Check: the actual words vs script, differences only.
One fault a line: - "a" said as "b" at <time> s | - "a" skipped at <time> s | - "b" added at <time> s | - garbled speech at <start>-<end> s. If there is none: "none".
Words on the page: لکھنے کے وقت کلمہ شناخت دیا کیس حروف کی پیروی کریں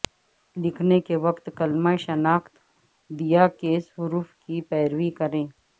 none